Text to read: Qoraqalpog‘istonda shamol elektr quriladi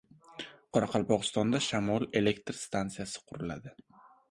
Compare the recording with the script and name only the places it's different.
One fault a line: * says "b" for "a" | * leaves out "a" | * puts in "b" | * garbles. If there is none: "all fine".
* puts in "stansiyasi"